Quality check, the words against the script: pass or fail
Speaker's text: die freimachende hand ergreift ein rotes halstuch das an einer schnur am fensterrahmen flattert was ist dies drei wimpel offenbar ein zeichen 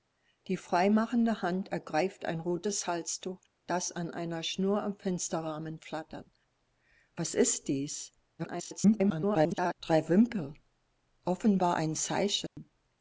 fail